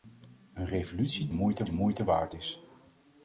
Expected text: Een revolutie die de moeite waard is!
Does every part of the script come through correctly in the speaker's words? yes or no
no